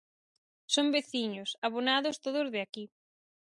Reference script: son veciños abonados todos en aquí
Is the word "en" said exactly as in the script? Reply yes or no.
no